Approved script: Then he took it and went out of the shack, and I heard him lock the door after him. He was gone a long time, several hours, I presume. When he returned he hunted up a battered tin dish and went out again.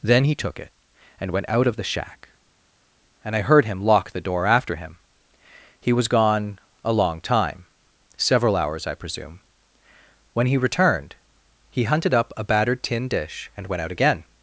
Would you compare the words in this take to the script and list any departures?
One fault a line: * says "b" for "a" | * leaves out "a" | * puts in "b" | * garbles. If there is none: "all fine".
all fine